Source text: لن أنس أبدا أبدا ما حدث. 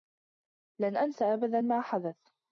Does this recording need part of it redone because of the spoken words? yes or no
yes